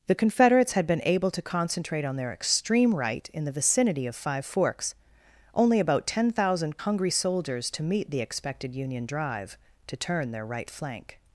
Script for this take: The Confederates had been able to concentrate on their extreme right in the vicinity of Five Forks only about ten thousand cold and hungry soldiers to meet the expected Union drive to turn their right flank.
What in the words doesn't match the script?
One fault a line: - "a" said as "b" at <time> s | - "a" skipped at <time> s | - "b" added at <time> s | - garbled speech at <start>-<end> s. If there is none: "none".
- "cold and" skipped at 6.8 s